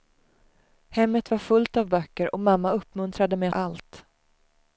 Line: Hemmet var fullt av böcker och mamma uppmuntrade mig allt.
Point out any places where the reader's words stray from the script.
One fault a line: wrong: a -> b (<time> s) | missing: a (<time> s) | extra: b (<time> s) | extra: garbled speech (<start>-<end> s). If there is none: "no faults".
no faults